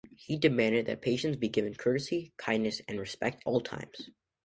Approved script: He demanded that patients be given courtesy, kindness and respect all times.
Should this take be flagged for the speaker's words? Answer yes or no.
no